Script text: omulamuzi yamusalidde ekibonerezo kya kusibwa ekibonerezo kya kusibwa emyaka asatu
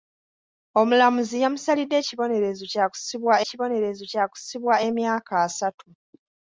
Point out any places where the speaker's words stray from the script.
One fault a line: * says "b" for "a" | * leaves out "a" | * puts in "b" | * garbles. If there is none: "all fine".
all fine